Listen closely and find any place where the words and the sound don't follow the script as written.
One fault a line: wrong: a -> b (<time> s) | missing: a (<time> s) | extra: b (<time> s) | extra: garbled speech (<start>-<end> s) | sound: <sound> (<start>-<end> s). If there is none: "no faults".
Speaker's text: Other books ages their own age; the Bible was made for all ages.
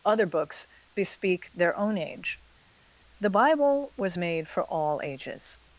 wrong: ages -> bespeak (0.9 s)